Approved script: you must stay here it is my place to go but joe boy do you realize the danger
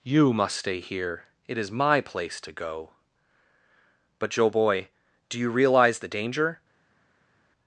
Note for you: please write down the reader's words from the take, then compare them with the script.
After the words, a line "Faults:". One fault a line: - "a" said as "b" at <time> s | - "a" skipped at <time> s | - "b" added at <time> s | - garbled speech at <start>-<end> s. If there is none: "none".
you must stay here it is my place to go but joe boy do you realize the danger
Faults:
none